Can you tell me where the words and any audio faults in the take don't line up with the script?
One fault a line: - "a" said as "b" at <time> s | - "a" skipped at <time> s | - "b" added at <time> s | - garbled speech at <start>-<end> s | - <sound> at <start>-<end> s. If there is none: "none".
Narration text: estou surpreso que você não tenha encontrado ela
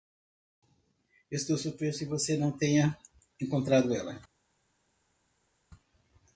none